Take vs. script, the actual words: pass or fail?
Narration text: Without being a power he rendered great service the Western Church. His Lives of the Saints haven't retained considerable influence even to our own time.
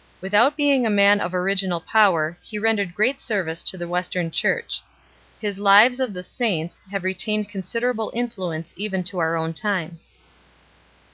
fail